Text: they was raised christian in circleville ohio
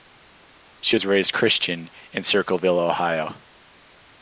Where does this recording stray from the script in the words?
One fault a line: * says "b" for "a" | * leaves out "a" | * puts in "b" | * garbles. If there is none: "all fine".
* says "she" for "they"